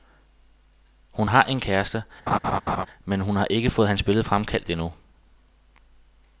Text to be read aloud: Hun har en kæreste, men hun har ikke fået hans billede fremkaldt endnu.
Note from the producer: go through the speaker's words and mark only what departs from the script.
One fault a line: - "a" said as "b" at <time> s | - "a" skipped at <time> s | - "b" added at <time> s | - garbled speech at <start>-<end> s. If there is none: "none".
none